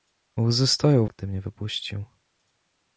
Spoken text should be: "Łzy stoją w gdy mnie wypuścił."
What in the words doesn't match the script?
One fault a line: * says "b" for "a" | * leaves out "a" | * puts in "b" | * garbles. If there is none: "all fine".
all fine